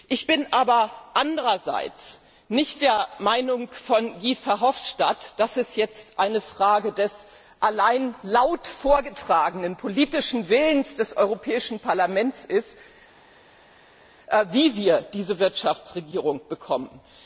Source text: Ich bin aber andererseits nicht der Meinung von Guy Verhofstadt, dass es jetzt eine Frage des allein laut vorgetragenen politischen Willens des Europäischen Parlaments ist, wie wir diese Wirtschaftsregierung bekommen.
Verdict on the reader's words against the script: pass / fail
pass